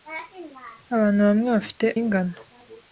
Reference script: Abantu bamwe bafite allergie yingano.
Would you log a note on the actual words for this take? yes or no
yes